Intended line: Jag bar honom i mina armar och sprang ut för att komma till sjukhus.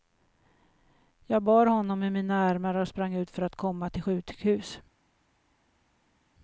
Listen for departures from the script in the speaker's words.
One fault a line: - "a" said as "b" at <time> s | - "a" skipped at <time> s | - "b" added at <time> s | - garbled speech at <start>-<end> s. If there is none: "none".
none